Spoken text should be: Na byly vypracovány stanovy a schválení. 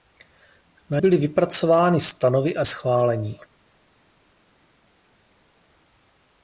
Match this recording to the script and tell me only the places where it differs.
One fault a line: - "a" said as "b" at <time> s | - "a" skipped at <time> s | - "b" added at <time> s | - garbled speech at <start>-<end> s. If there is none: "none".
none